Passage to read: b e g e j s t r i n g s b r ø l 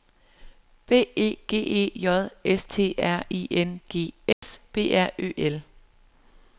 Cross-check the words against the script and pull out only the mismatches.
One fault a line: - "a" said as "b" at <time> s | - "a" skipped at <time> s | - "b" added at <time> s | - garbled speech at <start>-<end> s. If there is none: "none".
none